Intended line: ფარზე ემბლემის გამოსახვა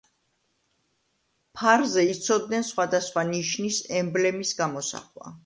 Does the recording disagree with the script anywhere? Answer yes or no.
yes